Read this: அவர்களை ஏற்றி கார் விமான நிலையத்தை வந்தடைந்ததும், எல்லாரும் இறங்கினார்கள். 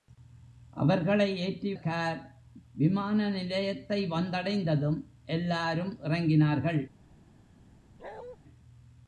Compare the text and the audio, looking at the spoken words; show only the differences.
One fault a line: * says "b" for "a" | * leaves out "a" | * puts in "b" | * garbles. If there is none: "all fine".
all fine